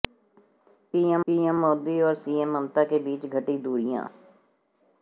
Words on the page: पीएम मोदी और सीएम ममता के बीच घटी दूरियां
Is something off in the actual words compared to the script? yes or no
yes